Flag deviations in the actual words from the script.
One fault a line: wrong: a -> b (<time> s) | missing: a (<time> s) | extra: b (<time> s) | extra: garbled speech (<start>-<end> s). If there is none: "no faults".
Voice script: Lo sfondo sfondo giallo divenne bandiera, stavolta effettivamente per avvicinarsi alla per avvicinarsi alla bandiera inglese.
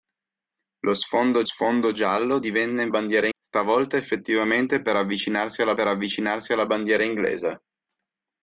no faults